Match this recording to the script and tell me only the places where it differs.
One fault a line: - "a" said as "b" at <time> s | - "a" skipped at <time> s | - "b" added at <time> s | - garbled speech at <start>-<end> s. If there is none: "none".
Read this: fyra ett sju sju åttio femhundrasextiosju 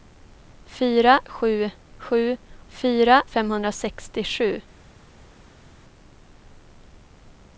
- "ett" skipped at 1.2 s
- "åttio" said as "fyra" at 2.7 s